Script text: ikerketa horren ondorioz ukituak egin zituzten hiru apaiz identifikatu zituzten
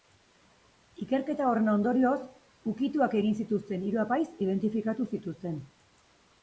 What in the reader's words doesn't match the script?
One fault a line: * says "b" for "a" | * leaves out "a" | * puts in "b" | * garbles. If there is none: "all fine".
all fine